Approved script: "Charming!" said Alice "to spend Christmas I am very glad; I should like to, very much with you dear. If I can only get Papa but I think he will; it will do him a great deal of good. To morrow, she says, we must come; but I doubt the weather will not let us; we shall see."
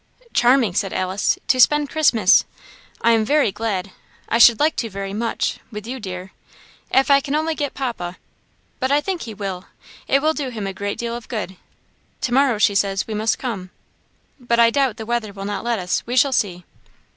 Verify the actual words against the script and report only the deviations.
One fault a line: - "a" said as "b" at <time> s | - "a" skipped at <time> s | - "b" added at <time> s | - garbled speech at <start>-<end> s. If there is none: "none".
none